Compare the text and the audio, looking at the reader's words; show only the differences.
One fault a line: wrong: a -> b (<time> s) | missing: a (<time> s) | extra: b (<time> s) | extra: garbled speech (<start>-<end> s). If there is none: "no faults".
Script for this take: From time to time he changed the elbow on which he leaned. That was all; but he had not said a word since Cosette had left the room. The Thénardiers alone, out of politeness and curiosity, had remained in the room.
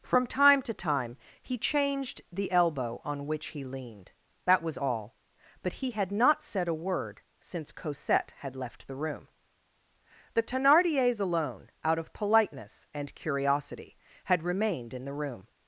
no faults